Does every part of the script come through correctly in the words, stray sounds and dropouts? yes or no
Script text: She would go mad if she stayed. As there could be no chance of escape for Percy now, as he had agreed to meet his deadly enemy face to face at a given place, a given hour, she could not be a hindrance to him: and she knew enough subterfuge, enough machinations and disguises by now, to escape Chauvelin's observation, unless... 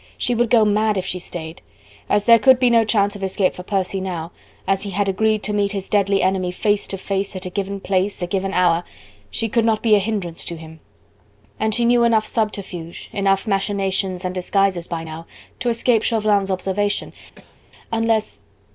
no